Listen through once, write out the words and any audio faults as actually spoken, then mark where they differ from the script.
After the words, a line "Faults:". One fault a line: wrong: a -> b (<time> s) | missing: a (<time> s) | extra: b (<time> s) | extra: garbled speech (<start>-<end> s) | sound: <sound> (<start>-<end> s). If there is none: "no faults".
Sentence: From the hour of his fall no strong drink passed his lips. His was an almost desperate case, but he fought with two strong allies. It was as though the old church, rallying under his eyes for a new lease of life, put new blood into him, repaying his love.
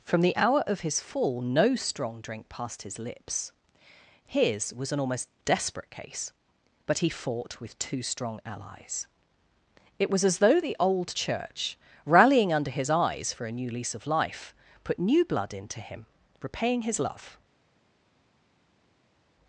From the hour of his fall no strong drink passed his lips. His was an almost desperate case, but he fought with two strong allies. It was as though the old church, rallying under his eyes for a new lease of life, put new blood into him, repaying his love.
Faults:
no faults